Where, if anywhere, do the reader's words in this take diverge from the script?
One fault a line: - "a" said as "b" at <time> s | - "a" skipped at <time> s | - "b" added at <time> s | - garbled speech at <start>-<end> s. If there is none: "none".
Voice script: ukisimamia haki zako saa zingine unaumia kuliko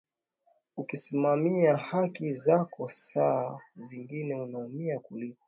none